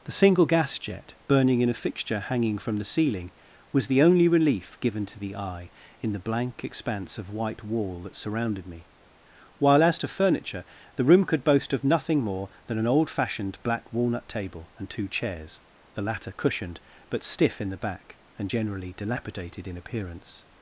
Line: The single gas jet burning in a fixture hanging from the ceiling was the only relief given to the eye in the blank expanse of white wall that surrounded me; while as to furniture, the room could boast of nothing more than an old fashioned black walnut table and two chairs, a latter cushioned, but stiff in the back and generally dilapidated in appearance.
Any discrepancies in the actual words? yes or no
yes